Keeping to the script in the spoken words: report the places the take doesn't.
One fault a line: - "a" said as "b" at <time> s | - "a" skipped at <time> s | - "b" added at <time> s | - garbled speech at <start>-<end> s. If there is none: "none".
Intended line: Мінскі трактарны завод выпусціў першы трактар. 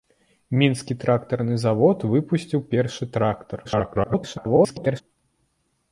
- garbled speech at 3.6-5.0 s